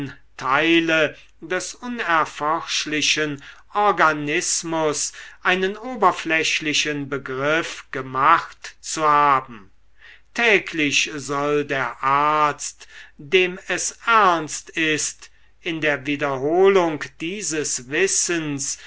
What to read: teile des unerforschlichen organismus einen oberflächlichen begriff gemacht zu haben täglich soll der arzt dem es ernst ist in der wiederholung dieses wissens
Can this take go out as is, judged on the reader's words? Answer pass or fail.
pass